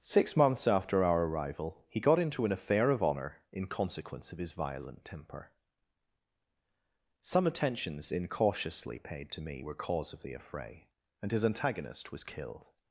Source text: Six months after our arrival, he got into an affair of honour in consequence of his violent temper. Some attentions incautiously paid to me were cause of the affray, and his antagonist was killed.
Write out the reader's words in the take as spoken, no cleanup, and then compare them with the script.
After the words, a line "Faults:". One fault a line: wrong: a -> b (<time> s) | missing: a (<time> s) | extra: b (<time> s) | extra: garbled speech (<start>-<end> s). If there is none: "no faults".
Six months after our arrival, he got into an affair of honour in consequence of his violent temper. Some attentions incautiously paid to me were cause of the affray, and his antagonist was killed.
Faults:
no faults